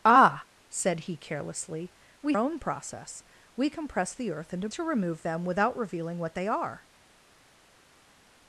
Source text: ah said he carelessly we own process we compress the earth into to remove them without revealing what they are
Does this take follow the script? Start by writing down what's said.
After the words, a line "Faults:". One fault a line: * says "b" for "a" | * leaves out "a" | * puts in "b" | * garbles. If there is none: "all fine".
ah said he carelessly we own process we compress the earth into to remove them without revealing what they are
Faults:
all fine